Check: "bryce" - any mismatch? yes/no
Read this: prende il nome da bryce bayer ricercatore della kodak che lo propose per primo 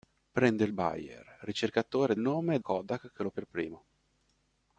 yes